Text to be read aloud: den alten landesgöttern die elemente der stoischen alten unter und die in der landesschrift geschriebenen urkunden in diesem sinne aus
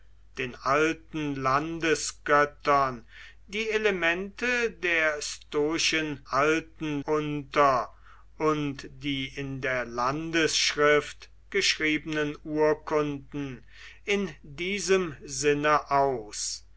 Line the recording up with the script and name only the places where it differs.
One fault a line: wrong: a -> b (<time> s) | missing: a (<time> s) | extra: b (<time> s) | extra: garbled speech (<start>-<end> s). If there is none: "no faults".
no faults